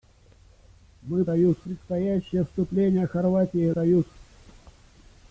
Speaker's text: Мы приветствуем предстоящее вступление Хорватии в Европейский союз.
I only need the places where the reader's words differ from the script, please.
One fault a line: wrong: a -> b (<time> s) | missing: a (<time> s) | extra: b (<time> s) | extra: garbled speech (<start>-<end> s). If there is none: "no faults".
wrong: приветствуем -> союз (1.3 s)
missing: в Европейский (3.7 s)